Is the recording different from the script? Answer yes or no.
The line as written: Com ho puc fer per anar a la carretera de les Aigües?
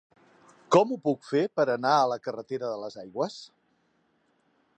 no